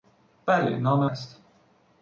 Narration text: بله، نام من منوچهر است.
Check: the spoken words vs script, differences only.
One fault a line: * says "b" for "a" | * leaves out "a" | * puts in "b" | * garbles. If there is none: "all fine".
* leaves out "من منوچهر"